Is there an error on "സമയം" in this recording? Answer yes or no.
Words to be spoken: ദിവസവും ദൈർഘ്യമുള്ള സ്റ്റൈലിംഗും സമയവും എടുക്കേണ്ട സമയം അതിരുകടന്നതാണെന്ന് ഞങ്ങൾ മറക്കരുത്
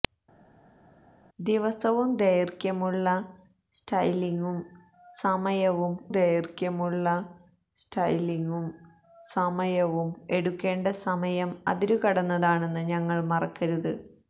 no